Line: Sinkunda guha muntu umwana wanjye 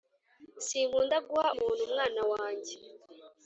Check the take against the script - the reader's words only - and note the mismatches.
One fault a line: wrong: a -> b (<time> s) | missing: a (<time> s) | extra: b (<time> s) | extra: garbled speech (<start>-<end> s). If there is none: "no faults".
no faults